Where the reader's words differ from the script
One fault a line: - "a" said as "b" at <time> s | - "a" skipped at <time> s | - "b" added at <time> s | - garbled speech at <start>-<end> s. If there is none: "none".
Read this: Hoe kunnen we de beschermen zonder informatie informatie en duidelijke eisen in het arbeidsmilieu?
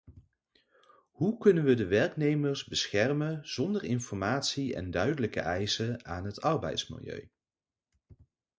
- "werknemers" added at 1.9 s
- "informatie" skipped at 4.8 s
- "in" said as "aan" at 6.0 s